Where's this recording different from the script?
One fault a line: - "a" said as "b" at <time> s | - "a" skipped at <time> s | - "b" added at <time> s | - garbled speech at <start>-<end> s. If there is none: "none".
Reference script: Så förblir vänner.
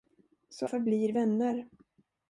none